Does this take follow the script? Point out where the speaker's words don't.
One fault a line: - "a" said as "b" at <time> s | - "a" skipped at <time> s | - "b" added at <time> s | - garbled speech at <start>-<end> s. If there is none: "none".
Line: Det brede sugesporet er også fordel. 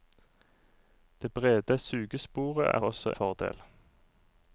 none